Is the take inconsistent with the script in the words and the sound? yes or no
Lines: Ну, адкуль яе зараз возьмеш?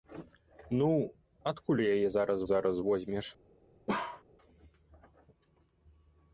yes